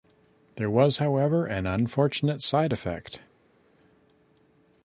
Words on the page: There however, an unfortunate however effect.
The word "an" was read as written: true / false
true